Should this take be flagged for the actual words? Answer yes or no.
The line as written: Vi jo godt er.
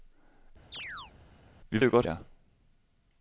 no